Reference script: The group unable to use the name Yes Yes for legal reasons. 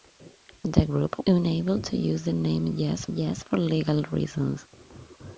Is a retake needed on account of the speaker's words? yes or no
no